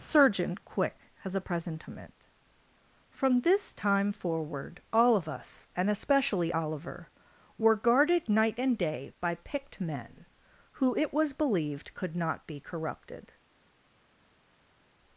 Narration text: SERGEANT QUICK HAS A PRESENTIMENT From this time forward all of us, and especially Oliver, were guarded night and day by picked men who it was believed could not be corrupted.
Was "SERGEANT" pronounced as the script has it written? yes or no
no